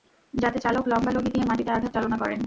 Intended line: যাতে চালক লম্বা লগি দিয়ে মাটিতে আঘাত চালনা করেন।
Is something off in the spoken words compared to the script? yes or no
no